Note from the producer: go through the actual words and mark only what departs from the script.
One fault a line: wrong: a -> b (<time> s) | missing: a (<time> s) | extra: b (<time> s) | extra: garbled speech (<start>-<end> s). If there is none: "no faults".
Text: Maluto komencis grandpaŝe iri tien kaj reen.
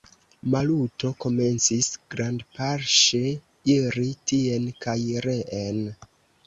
no faults